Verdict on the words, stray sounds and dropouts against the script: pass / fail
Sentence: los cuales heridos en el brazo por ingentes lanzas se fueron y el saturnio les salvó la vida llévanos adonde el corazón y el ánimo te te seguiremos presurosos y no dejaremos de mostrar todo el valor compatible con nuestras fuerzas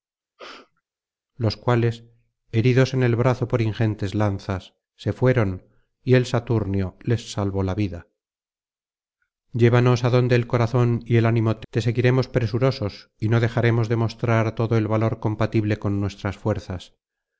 fail